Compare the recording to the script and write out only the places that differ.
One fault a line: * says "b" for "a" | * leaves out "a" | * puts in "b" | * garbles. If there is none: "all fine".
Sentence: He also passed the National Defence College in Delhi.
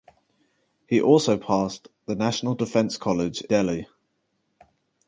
* leaves out "in"